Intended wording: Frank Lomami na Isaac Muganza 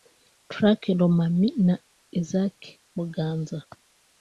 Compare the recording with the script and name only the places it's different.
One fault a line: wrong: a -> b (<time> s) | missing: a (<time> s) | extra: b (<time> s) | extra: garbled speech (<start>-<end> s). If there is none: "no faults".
no faults